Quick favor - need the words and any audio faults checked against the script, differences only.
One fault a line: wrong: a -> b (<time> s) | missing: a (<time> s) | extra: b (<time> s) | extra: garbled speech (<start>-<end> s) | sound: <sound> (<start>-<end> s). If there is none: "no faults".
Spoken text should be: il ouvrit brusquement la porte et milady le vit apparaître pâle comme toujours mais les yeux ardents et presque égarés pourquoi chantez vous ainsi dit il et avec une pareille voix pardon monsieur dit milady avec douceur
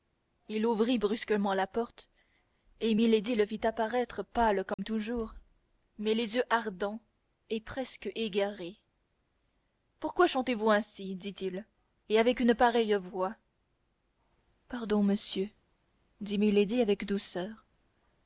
sound: dropout (4.7-4.8 s)